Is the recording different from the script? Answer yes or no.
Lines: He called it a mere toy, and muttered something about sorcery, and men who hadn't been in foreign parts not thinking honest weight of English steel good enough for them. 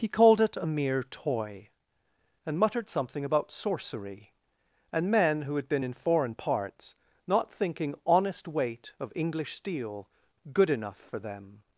yes